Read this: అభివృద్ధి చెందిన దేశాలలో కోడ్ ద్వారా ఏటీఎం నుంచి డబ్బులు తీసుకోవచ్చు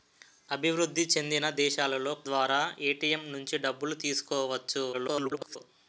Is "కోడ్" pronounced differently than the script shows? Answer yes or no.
yes